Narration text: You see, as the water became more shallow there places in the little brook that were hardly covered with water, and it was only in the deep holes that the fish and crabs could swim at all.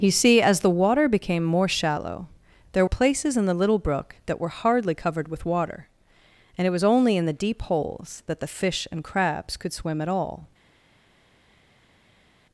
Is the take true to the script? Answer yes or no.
yes